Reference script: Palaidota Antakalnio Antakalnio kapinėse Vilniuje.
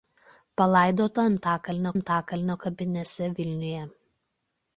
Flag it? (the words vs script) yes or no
no